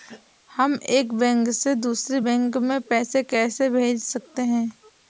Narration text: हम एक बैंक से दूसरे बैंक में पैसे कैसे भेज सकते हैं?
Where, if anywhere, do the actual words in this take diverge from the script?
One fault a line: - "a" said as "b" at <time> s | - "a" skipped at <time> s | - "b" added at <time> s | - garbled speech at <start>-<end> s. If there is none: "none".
none